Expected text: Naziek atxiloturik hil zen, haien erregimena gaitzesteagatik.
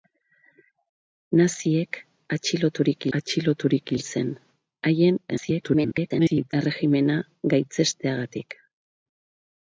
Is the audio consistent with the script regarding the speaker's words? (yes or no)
no